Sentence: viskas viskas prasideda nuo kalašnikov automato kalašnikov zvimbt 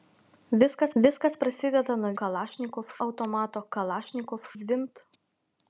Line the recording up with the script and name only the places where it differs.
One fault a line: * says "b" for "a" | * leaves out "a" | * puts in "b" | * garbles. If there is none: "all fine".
all fine